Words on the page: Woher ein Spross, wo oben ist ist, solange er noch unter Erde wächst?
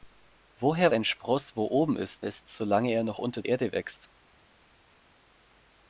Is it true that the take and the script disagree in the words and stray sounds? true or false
false